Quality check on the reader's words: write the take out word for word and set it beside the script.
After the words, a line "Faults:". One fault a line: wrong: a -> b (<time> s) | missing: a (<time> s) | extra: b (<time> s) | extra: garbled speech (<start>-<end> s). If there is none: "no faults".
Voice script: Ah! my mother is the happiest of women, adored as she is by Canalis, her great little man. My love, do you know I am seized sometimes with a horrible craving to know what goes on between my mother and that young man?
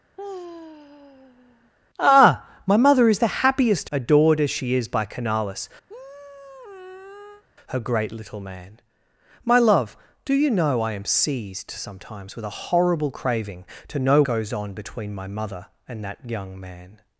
Ah! my mother is the happiest adored as she is by Canalis, her great little man. My love, do you know I am seized sometimes with a horrible craving to know goes on between my mother and that young man?
Faults:
missing: of women (3.9 s)
missing: what (14.2 s)